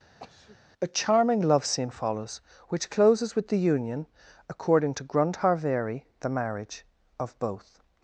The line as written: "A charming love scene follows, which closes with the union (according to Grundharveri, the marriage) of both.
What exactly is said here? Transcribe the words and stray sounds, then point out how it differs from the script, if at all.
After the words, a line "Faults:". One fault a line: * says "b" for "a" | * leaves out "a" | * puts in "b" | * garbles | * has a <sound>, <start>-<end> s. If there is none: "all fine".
"A charming love scene follows, which closes with the union (according to Grundharveri, the marriage) of both.
Faults:
* has a sneeze, 0.2-0.6 s